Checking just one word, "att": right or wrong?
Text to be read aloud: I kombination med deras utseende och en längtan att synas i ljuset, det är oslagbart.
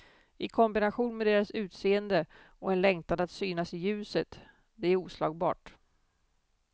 right